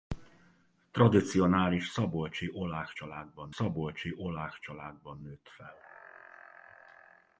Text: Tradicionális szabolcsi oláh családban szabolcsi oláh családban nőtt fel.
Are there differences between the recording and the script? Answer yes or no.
no